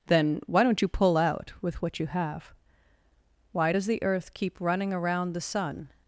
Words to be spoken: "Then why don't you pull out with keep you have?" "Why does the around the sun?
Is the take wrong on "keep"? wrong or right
wrong